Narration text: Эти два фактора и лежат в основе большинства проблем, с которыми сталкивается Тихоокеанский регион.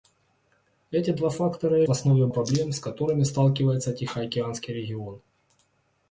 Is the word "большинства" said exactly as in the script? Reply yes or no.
no